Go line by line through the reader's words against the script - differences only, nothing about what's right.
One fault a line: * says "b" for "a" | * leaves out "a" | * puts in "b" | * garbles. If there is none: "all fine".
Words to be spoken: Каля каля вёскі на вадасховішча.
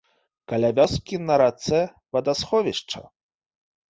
* leaves out "каля"
* puts in "рацэ"